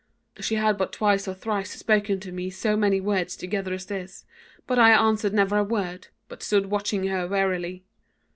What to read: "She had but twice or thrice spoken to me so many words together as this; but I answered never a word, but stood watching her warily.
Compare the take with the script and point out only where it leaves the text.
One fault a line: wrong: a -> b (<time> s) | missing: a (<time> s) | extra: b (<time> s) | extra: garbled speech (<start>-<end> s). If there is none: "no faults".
no faults